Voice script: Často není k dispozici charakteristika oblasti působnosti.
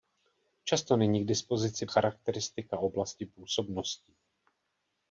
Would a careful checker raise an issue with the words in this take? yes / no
no